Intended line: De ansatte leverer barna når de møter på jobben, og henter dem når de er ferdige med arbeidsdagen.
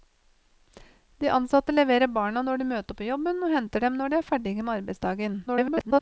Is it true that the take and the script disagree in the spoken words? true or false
true